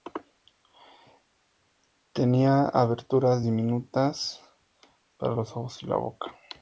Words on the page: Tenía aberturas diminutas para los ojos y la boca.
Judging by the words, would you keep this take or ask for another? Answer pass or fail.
pass